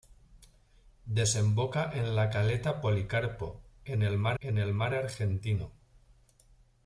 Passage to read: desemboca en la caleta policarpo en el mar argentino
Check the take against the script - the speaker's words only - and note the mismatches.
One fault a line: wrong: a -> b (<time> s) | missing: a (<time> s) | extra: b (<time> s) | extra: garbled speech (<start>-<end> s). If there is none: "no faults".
extra: en el mar (4.4 s)